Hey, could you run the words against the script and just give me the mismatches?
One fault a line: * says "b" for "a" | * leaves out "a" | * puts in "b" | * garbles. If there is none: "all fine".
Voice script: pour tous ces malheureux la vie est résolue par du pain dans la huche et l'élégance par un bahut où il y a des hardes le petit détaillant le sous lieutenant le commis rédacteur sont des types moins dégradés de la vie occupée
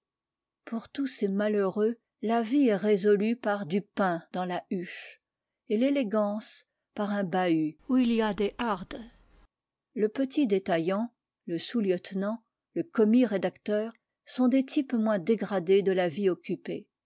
all fine